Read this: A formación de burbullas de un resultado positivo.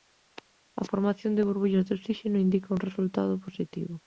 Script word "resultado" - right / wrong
right